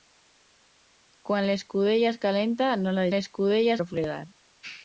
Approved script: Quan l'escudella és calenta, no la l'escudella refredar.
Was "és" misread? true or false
false